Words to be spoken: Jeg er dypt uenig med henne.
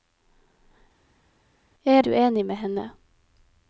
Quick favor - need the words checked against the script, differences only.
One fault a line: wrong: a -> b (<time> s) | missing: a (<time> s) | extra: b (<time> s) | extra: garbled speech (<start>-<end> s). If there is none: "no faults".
missing: dypt (2.0 s)